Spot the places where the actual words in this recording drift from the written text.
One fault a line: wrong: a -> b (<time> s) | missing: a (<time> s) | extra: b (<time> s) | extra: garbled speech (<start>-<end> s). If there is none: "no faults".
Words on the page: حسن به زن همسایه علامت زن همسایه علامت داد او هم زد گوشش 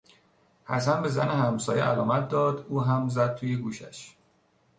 missing: زن همسایه علامت (2.3 s)
extra: توی (3.3 s)